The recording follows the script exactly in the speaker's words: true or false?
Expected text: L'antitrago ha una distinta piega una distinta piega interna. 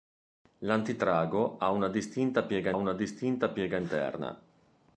true